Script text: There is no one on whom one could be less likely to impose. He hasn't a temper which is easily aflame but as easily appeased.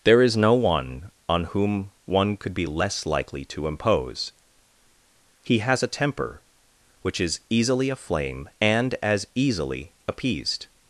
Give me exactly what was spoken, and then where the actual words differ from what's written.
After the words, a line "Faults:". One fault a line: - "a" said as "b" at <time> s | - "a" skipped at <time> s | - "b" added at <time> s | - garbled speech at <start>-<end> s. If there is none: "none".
There is no one on whom one could be less likely to impose. He has a temper which is easily aflame and as easily appeased.
Faults:
- "hasn't" said as "has" at 5.6 s
- "but" said as "and" at 8.6 s